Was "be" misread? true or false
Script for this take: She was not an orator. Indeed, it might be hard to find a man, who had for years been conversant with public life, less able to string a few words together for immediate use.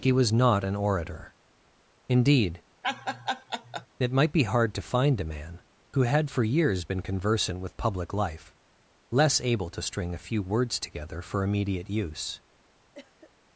false